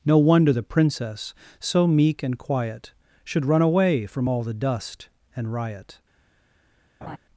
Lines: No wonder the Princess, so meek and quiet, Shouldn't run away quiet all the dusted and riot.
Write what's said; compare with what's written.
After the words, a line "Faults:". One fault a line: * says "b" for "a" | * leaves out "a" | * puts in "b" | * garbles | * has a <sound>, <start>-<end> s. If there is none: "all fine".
No wonder the Princess, so meek and quiet, Should run away from all the dust and riot.
Faults:
* says "Should" for "Shouldn't"
* says "from" for "quiet"
* says "dust" for "dusted"
* has a laugh, 7.0-7.2 s